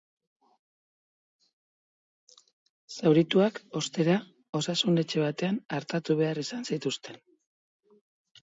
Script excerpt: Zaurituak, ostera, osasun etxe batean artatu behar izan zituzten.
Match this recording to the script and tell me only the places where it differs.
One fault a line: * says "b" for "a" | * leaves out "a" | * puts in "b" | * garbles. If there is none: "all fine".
all fine